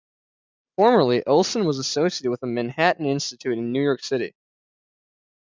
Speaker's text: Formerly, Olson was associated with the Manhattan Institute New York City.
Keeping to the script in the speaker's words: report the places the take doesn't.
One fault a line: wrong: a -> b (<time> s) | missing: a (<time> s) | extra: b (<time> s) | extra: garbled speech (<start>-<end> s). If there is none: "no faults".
extra: in (3.6 s)